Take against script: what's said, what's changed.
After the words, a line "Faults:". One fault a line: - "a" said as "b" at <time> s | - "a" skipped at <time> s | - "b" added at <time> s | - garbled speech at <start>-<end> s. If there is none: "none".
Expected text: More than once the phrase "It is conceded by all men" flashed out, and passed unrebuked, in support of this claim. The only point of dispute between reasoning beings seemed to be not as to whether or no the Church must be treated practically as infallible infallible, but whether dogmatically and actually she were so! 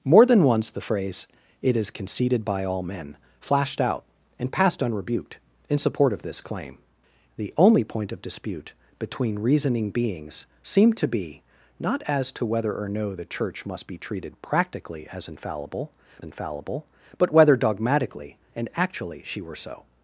More than once the phrase "It is conceded by all men" flashed out, and passed unrebuked, in support of this claim. The only point of dispute between reasoning beings seemed to be not as to whether or no the Church must be treated practically as infallible infallible, but whether dogmatically and actually she were so!
Faults:
none